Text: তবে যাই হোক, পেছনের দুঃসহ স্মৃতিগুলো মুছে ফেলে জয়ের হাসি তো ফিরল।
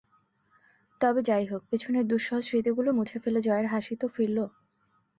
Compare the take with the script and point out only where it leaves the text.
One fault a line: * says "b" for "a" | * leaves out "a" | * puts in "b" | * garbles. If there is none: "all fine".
all fine